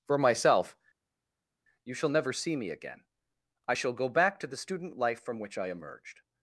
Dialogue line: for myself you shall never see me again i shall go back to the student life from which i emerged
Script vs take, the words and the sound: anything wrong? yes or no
no